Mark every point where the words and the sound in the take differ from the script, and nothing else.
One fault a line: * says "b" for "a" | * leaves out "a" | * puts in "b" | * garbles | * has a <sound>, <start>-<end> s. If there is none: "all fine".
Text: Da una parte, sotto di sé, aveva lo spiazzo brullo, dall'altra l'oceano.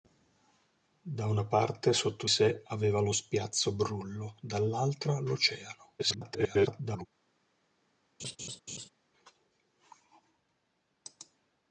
* leaves out "di"
* garbles
* has a laugh, 8.2-8.9 s